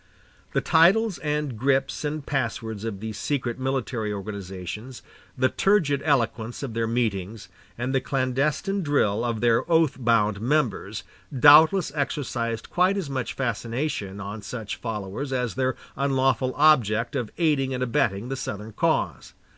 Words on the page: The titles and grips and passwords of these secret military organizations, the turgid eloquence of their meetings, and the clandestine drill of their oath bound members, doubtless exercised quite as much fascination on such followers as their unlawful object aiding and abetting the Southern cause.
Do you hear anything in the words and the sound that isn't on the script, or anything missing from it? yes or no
yes